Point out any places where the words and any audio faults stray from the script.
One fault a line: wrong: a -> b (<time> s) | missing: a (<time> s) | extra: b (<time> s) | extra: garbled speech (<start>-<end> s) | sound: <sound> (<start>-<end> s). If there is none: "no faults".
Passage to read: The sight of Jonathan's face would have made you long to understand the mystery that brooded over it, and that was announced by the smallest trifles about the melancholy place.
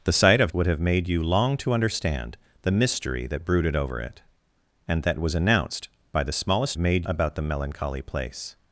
missing: Jonathan's face (0.5 s)
wrong: trifles -> made (6.8 s)